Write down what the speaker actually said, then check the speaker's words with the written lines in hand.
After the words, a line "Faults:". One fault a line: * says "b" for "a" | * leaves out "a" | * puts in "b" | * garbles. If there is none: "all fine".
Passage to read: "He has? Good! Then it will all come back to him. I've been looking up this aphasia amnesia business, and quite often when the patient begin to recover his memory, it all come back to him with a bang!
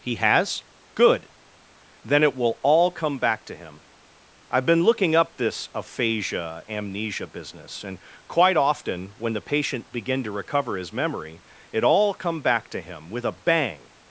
"He has? Good! Then it will all come back to him. I've been looking up this aphasia amnesia business, and quite often when the patient begin to recover his memory, it all come back to him with a bang!
Faults:
all fine